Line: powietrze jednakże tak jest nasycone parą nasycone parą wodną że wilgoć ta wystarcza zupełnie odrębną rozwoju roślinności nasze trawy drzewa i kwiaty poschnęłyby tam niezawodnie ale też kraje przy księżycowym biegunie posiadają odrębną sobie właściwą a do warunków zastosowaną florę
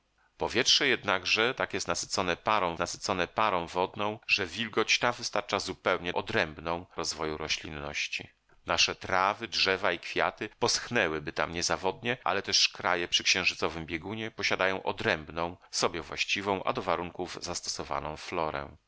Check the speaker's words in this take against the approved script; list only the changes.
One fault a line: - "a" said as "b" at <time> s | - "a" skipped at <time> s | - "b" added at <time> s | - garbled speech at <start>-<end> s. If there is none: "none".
none